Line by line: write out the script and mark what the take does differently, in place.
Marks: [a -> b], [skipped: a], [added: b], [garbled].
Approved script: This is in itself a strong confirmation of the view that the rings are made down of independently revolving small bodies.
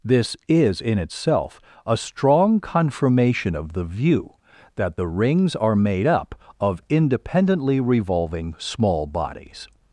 This is in itself a strong confirmation of the view that the rings are made [down -> up] of independently revolving small bodies.